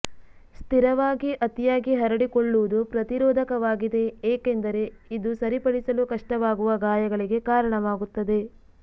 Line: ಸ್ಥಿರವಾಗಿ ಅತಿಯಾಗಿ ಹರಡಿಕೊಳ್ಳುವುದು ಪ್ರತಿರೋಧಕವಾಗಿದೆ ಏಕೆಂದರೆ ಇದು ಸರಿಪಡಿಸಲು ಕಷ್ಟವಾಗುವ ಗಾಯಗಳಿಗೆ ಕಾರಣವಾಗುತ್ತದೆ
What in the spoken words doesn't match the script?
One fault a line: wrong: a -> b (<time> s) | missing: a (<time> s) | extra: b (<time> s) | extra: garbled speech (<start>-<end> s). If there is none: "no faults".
no faults